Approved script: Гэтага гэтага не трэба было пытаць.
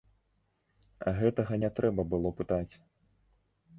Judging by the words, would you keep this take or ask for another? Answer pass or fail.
fail